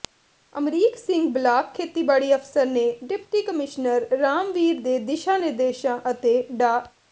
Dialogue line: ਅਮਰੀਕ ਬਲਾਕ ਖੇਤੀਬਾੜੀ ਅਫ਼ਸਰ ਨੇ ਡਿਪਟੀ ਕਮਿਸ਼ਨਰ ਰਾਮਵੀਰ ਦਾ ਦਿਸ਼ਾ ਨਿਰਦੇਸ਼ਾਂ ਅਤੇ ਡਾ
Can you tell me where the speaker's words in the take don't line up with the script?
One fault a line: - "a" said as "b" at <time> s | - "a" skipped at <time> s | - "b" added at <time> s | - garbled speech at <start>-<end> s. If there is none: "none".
- "ਸਿੰਘ" added at 1.0 s
- "ਦਾ" said as "ਦੇ" at 4.8 s